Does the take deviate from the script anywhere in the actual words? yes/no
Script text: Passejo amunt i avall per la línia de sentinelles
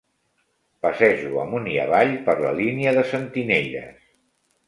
no